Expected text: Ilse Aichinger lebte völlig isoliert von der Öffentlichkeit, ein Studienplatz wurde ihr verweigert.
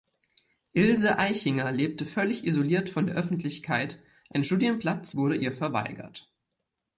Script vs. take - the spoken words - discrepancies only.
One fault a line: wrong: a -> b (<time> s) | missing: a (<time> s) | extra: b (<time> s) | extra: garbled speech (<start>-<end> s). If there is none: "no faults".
no faults